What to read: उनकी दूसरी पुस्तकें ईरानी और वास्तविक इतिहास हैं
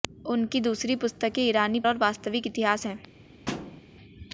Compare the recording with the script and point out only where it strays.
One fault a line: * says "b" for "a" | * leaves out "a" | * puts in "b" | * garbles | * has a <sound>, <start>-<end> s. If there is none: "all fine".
* has a thud, 3.5-3.8 s